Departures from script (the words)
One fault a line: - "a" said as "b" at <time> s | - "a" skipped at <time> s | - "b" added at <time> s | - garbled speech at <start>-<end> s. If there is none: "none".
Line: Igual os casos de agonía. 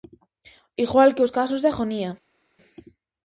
- "que" added at 1.1 s